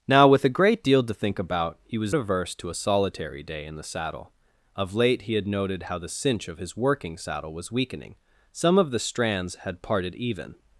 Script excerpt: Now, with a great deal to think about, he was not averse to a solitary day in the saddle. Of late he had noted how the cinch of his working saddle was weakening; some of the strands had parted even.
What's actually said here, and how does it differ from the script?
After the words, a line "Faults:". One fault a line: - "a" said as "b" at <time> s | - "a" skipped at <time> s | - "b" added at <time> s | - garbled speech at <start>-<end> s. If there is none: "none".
Now, with a great deal to think about, he was averse to a solitary day in the saddle. Of late he had noted how the cinch of his working saddle was weakening; some of the strands had parted even.
Faults:
- "not" skipped at 2.1 s